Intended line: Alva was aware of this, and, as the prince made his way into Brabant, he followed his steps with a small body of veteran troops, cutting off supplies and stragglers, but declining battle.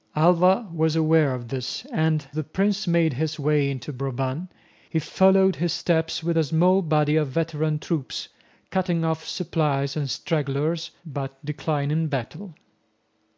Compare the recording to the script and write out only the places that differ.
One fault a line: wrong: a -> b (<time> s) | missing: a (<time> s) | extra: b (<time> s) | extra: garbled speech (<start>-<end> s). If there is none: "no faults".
missing: as (2.2 s)